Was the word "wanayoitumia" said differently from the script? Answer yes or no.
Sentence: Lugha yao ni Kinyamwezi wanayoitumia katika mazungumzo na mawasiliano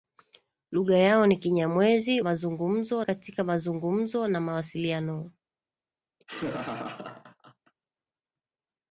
yes